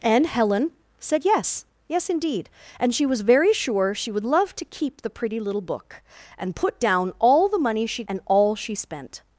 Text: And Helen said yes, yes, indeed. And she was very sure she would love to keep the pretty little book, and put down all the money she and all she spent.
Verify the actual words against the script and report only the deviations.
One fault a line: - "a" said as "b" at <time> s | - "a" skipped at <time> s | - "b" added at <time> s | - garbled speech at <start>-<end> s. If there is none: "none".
none